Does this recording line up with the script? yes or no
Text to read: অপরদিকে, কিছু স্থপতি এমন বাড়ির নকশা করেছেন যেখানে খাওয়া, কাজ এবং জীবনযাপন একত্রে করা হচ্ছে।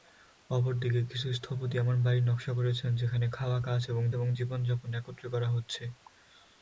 no